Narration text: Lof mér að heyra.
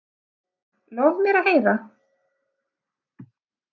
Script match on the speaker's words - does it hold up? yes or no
yes